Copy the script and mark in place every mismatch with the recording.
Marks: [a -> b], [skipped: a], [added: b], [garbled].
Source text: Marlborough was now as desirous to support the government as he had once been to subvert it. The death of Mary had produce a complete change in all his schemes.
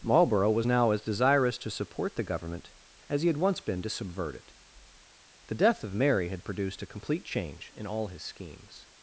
Marlborough was now as desirous to support the government as he had once been to subvert it. The death of Mary had [produce -> produced] a complete change in all his schemes.